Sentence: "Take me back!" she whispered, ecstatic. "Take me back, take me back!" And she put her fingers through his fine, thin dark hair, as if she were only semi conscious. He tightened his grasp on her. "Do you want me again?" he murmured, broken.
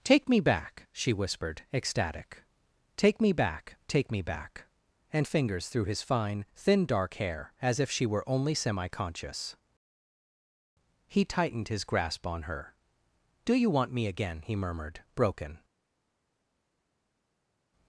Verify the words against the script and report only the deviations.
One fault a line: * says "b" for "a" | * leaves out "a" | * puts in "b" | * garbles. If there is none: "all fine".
* leaves out "she put her"